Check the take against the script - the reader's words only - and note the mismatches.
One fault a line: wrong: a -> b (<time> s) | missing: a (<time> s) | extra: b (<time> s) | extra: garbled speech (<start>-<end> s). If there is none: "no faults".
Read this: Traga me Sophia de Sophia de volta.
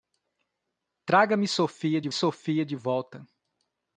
no faults